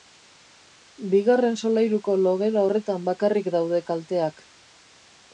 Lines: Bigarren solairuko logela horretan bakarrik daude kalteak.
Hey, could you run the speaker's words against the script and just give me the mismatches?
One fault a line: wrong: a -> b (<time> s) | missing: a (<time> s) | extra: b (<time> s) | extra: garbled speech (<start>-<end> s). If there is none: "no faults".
no faults